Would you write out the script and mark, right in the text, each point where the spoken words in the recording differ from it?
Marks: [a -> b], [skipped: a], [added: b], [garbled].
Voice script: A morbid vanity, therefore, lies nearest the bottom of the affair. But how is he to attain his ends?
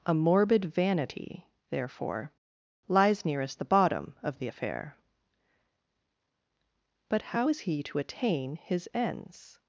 A morbid vanity, therefore, lies nearest the bottom of the affair. But how is he to attain his ends?